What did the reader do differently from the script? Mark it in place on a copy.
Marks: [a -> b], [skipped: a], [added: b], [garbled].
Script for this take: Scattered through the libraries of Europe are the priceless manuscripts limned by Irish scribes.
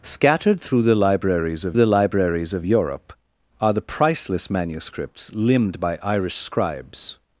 Scattered through the libraries of [added: the libraries of] Europe are the priceless manuscripts limned by Irish scribes.